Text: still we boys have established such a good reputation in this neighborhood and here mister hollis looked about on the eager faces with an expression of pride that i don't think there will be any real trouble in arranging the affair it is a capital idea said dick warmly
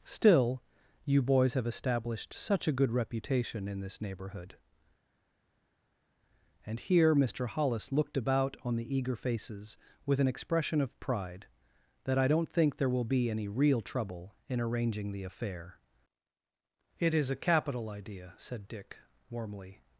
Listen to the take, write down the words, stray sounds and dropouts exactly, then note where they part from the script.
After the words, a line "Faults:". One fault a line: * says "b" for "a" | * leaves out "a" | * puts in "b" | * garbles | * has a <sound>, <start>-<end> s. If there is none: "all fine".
still you boys have established such a good reputation in this neighborhood and here mister hollis looked about on the eager faces with an expression of pride that i don't think there will be any real trouble in arranging the affair it is a capital idea said dick warmly
Faults:
* says "you" for "we"